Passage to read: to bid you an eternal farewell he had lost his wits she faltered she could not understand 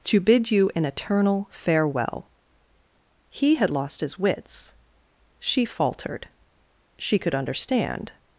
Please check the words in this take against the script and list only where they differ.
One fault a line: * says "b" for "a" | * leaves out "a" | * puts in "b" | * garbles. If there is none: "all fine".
* leaves out "not"